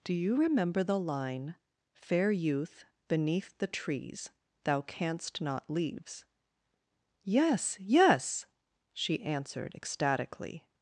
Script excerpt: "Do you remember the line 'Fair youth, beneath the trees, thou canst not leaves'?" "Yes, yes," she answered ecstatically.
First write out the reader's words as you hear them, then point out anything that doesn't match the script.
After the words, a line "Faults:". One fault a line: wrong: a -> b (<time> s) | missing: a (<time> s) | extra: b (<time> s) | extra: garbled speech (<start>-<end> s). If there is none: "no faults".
"Do you remember the line 'Fair youth, beneath the trees, thou canst not leaves'?" "Yes, yes," she answered ecstatically.
Faults:
no faults